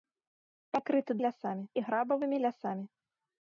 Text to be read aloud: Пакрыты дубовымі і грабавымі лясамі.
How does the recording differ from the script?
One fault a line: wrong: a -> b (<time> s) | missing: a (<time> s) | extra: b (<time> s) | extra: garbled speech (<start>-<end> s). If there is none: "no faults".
wrong: дубовымі -> лясамі (1.3 s)